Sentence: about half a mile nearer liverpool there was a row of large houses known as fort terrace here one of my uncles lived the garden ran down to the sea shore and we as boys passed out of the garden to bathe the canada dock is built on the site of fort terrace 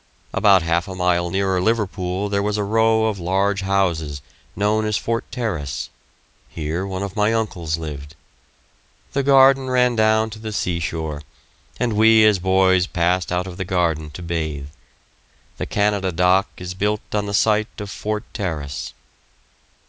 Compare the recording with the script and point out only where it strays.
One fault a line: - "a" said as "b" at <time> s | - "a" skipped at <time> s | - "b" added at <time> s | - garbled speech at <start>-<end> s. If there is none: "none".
none